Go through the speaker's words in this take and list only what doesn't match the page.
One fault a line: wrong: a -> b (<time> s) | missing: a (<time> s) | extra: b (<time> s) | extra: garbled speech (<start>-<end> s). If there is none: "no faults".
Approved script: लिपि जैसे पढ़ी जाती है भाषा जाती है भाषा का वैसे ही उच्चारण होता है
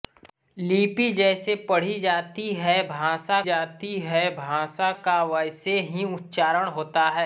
no faults